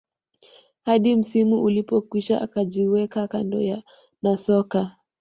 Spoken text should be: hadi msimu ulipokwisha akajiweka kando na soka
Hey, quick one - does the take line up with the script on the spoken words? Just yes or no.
yes